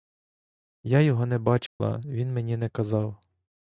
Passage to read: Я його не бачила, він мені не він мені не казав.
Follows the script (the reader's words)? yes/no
no